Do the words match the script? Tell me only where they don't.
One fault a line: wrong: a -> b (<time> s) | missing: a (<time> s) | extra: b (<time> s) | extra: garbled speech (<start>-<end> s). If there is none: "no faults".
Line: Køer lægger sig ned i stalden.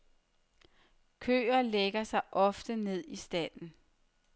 extra: ofte (2.3 s)